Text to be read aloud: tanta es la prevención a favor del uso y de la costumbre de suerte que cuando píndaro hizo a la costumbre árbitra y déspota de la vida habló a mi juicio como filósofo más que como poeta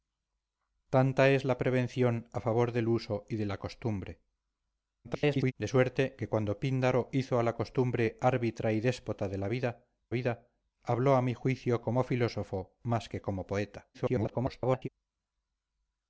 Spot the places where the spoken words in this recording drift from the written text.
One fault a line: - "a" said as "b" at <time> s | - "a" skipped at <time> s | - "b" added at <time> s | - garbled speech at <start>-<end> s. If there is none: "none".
- garbled speech at 5.0-5.5 s
- "vida" added at 10.1 s
- garbled speech at 13.9-14.9 s